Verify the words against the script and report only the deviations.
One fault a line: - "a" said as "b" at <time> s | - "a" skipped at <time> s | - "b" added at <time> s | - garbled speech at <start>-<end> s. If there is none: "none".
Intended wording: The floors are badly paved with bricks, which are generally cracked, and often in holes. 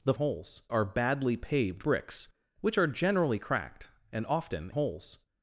- "floors" said as "holes" at 0.1 s
- "with" skipped at 1.8 s
- "in" skipped at 4.7 s